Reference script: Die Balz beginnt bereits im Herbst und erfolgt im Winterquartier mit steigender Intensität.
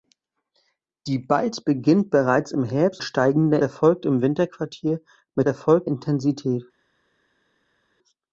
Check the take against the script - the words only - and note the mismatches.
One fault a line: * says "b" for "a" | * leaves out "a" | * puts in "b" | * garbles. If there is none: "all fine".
* says "steigender" for "und"
* says "erfolgt" for "steigender"